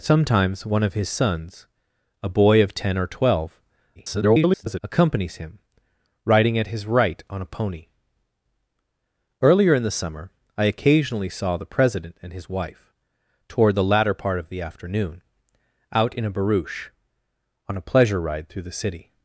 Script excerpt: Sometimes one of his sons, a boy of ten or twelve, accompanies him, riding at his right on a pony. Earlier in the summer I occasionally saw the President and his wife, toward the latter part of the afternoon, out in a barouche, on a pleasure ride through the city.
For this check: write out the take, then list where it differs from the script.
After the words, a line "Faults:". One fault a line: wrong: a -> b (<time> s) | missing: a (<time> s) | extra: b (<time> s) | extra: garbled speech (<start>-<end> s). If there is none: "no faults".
Sometimes one of his sons, a boy of ten or twelve, [garbled] accompanies him, riding at his right on a pony. Earlier in the summer I occasionally saw the President and his wife, toward the latter part of the afternoon, out in a barouche, on a pleasure ride through the city.
Faults:
extra: garbled speech (4.0-4.8 s)